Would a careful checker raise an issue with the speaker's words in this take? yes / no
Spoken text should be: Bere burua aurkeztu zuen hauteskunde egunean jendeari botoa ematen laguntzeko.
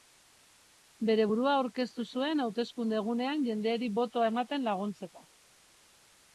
no